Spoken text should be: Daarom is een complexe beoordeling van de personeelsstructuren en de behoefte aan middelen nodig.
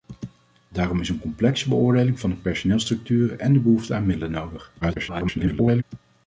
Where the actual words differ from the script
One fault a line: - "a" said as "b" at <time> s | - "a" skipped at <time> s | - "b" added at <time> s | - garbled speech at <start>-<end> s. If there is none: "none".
- garbled speech at 4.8-5.8 s